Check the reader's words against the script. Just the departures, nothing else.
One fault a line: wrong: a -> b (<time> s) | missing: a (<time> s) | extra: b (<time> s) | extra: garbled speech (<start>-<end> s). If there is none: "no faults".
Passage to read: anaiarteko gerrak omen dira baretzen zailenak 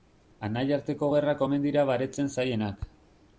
no faults